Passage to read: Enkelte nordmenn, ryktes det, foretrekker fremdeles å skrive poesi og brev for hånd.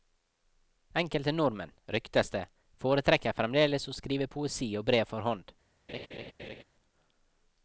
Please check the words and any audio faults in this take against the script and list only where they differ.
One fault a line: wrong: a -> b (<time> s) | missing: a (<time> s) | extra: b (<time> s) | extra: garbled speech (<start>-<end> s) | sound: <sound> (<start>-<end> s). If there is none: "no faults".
sound: laugh (5.9-6.6 s)